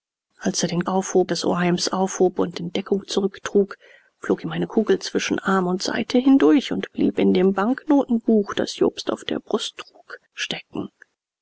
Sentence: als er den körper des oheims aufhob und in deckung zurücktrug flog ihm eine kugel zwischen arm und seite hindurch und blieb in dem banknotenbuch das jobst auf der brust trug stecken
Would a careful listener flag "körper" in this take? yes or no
yes